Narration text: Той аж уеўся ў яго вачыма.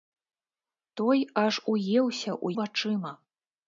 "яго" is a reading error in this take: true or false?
true